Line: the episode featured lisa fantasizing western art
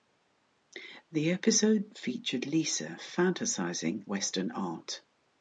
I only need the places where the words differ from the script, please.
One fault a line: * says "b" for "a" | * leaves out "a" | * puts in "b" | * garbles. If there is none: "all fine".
all fine